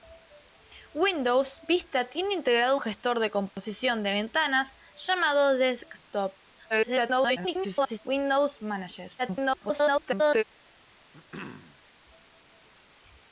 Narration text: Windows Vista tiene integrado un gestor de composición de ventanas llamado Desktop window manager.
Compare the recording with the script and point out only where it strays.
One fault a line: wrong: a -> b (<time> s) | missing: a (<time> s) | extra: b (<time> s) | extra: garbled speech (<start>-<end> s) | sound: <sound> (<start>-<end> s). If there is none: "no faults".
missing: un (2.8 s)
sound: dropout (3.5-3.6 s)
extra: garbled speech (6.7-8.0 s)
extra: garbled speech (9.2-10.4 s)
sound: throat clearing (11.1-11.8 s)